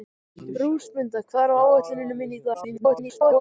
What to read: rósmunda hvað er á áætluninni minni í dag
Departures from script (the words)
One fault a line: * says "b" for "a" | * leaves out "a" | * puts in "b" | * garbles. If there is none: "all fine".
* garbles